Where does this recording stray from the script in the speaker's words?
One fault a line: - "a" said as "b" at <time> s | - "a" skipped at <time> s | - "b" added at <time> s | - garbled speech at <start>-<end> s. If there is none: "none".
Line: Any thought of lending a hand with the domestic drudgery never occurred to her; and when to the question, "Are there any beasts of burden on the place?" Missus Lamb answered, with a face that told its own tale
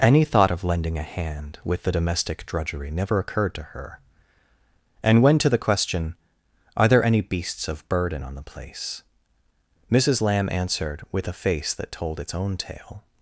none